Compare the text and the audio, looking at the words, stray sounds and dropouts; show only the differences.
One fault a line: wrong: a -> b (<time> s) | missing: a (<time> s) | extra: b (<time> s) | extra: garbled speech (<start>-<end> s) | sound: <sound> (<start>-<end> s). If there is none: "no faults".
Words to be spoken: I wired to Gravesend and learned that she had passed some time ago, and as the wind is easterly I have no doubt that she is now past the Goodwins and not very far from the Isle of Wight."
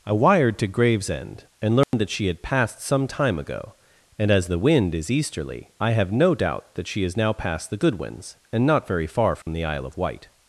sound: dropout (1.8-1.9 s)
sound: dropout (9.4-9.5 s)